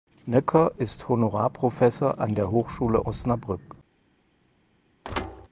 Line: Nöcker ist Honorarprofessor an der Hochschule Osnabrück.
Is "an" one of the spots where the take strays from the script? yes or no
no